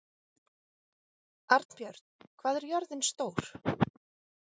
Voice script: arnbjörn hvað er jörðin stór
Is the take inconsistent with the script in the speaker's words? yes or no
no